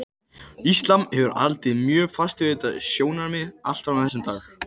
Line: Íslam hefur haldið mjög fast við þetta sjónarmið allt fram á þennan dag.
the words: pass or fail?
pass